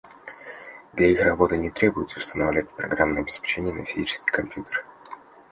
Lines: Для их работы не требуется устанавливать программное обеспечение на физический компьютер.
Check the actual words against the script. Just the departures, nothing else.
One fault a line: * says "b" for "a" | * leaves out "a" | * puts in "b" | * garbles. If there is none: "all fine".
all fine